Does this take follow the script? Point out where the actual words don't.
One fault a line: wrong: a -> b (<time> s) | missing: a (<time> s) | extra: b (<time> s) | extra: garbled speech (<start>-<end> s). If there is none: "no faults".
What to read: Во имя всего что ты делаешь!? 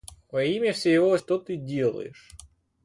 no faults